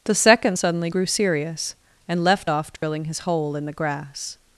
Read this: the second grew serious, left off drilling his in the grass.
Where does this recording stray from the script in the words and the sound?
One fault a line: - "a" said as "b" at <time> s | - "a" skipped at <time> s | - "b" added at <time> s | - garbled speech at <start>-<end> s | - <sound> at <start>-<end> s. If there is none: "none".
- "suddenly" added at 0.6 s
- "and" added at 2.1 s
- dropout at 2.8-2.8 s
- "hole" added at 3.2 s